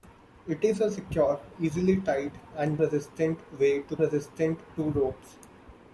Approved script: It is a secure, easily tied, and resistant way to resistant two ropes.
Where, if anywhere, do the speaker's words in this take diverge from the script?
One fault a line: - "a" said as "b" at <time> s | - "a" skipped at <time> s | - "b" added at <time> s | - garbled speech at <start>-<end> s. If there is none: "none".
none